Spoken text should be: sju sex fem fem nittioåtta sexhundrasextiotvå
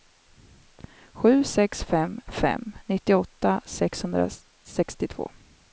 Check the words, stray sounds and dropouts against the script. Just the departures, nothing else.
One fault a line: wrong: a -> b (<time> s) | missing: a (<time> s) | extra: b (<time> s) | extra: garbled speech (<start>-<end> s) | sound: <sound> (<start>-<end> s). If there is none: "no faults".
no faults